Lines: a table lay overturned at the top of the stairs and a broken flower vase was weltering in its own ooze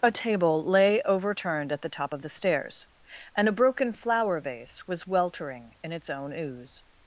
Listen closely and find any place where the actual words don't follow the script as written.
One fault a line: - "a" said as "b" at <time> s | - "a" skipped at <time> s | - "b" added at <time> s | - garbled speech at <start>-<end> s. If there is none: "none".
none